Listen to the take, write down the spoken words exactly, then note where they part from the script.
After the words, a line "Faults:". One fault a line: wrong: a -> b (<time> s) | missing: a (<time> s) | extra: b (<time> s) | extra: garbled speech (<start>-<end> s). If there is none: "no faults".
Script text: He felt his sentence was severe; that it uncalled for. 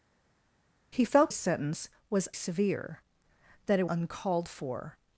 He felt his sentence was severe; that it uncalled for.
Faults:
no faults